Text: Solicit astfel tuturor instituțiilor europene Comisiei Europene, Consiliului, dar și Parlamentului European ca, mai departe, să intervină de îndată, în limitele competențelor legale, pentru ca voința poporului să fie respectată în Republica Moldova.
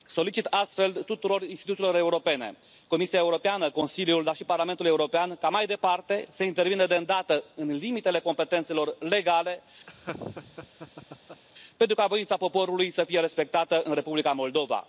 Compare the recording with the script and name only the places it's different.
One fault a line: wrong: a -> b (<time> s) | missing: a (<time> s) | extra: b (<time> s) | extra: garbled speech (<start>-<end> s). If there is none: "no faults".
no faults